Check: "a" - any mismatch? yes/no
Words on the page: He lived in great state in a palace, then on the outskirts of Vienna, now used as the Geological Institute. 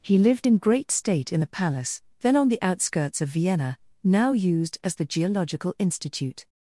yes